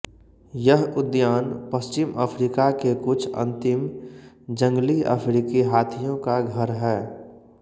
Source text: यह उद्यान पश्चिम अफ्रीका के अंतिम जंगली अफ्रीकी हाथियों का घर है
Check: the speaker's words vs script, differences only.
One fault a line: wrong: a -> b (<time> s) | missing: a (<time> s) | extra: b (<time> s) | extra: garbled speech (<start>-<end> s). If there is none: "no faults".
extra: कुछ (3.0 s)